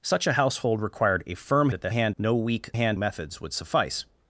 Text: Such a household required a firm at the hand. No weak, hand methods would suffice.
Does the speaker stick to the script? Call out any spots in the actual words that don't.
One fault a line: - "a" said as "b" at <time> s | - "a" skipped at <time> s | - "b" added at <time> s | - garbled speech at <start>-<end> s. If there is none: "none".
none